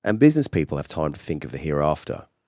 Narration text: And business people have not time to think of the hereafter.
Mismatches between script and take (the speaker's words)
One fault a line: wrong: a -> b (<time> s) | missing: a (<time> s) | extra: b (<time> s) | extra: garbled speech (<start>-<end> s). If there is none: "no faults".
missing: not (0.9 s)